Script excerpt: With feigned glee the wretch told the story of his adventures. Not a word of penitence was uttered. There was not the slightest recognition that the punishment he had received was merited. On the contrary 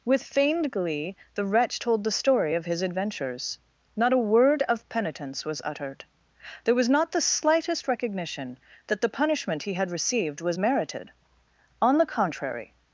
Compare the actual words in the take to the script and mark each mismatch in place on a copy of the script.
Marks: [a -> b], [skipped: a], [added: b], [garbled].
With feigned glee the wretch told the story of his adventures. Not a word of penitence was uttered. There was not the slightest recognition that the punishment he had received was merited. On the contrary